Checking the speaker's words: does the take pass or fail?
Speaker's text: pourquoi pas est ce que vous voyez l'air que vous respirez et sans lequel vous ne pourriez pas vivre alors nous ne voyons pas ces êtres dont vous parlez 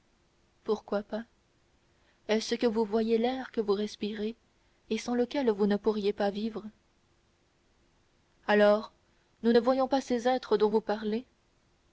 pass